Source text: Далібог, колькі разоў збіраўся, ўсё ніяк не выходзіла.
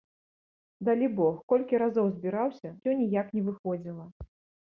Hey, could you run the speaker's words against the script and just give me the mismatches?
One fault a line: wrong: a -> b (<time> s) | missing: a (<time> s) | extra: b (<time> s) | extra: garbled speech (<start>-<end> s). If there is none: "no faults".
no faults